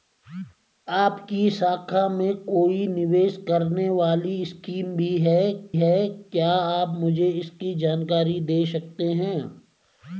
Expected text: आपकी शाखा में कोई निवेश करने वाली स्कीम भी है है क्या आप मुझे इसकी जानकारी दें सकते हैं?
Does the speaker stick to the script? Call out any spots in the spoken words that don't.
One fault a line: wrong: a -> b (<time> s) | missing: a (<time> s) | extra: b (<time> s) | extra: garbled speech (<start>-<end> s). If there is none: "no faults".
no faults